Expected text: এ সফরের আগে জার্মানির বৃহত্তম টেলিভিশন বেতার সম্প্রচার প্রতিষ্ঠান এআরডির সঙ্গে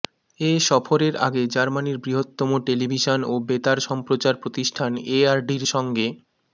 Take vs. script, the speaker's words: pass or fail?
fail